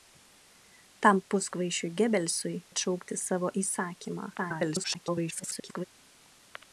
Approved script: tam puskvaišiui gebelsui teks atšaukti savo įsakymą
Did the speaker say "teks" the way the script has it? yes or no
no